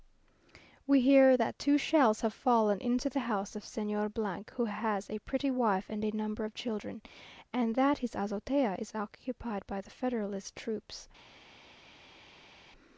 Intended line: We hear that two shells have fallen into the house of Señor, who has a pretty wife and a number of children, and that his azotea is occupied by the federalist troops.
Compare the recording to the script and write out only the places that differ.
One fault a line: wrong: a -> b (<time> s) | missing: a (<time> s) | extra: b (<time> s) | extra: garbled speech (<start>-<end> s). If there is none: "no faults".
no faults